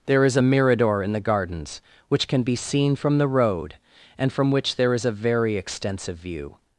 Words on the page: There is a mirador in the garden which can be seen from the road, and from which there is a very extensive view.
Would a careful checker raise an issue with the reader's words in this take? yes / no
yes